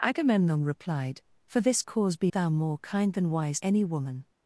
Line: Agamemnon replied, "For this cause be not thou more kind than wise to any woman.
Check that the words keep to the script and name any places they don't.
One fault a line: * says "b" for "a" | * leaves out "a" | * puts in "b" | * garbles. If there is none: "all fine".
* leaves out "not"
* leaves out "to"